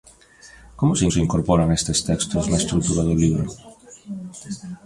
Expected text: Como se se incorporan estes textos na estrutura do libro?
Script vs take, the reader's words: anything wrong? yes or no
no